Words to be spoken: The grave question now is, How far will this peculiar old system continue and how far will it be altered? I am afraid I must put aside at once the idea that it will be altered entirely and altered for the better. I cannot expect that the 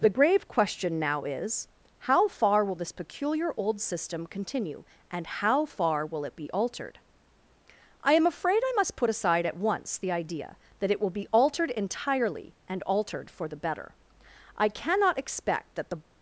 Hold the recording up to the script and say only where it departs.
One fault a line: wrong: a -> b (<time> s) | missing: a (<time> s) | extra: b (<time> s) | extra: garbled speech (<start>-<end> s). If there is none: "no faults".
no faults